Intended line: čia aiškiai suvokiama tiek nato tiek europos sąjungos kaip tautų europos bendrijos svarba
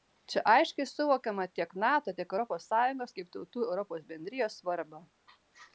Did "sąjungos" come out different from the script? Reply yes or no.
no